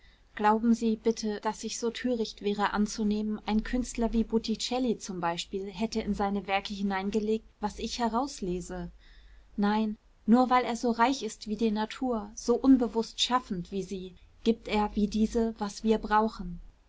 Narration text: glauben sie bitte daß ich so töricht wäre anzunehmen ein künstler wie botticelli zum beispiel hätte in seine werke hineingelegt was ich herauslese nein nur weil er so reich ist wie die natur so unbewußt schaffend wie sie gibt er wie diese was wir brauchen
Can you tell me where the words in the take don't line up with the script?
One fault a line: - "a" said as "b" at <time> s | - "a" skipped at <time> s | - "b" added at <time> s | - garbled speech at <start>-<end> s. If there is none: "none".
none